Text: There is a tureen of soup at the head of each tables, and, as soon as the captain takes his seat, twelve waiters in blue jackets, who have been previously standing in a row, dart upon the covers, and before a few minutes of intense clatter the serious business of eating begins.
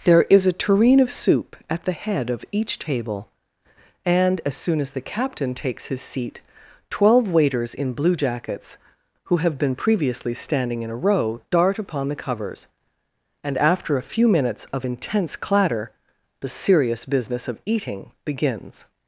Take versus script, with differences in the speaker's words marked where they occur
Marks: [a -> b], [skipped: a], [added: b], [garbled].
There is a tureen of soup at the head of each [tables, -> table] and, as soon as the captain takes his seat, twelve waiters in blue jackets, who have been previously standing in a row, dart upon the covers, and [before -> after] a few minutes of intense clatter the serious business of eating begins.